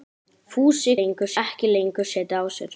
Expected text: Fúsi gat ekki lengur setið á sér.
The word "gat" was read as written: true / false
false